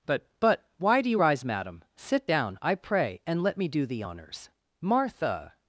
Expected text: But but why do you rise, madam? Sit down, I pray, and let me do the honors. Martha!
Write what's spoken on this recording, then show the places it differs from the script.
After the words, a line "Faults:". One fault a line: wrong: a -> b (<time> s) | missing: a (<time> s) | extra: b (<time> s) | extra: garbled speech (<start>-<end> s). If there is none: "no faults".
But but why do you rise, madam? Sit down, I pray, and let me do the honors. Martha!
Faults:
no faults